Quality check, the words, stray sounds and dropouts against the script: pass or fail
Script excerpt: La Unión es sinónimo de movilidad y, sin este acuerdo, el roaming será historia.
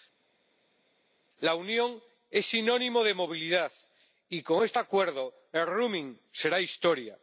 fail